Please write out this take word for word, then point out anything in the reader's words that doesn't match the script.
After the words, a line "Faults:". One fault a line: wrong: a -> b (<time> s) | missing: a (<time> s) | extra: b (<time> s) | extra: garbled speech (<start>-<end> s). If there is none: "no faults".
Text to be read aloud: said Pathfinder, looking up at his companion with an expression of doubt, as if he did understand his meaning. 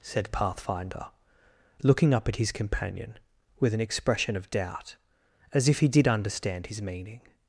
said Pathfinder, looking up at his companion with an expression of doubt, as if he did understand his meaning.
Faults:
no faults